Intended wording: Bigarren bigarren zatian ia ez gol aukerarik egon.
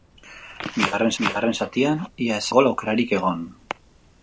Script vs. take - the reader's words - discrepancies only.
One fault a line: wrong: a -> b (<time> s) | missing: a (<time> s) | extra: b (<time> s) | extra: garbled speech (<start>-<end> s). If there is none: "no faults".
no faults